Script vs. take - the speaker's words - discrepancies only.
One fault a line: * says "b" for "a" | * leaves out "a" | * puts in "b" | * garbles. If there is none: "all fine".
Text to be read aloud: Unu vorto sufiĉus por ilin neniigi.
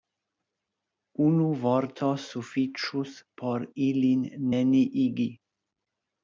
all fine